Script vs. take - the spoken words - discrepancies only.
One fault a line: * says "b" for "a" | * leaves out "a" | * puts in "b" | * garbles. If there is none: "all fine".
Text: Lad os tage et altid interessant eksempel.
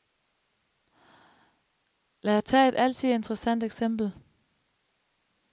all fine